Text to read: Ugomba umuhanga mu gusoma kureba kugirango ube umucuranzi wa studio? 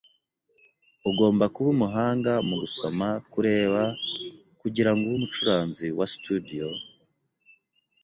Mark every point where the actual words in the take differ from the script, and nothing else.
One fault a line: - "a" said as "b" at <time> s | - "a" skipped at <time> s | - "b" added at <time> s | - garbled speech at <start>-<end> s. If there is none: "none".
- "kuba" added at 1.5 s